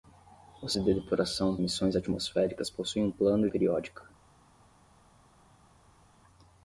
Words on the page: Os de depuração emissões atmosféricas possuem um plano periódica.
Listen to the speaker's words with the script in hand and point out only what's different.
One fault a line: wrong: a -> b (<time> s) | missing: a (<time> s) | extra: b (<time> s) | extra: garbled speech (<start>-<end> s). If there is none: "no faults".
no faults